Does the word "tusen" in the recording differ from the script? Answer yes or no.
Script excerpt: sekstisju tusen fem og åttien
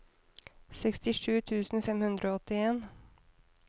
no